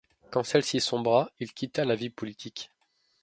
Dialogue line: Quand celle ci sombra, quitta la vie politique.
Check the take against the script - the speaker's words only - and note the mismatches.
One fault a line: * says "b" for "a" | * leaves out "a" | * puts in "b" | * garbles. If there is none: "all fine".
* puts in "il"